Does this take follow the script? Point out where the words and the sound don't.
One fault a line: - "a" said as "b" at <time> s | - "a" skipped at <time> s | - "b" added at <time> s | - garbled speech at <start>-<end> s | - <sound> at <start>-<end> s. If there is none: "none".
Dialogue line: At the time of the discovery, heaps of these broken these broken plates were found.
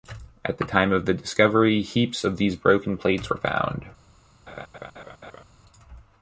- "these broken" skipped at 3.0 s
- laugh at 4.5-5.4 s